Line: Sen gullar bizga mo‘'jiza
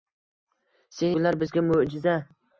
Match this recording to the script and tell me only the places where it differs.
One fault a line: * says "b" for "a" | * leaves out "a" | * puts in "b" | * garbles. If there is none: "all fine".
all fine